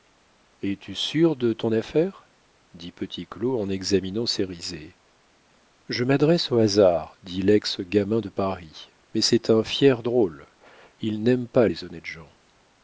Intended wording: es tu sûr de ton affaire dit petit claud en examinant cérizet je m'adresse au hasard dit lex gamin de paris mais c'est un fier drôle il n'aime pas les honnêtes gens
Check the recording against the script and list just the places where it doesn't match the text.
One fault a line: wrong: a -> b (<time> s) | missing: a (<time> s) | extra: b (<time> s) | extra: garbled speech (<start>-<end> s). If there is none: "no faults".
no faults